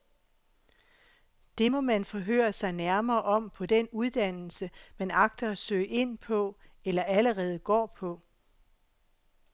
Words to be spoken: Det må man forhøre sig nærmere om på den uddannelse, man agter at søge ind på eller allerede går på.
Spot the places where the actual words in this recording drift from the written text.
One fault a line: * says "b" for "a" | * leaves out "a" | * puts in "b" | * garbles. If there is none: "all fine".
all fine